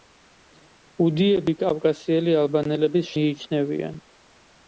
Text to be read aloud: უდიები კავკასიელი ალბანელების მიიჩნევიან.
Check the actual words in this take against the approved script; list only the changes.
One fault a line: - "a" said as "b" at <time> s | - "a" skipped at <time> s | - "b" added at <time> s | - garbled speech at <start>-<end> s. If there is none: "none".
none